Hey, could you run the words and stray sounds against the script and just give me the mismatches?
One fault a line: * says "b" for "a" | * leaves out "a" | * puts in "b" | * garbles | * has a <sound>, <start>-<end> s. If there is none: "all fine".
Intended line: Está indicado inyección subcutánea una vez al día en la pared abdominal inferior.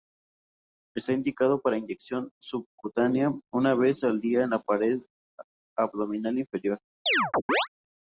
* puts in "para"
* has a chirp, 7.1-7.7 s